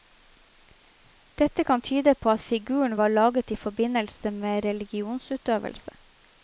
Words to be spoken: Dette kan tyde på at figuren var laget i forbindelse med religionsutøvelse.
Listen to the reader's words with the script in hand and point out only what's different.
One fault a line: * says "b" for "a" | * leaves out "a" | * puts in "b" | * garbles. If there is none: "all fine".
all fine